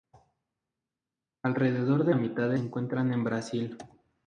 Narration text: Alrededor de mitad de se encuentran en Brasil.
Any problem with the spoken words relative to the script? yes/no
no